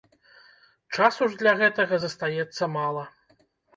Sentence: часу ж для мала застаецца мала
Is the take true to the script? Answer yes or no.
no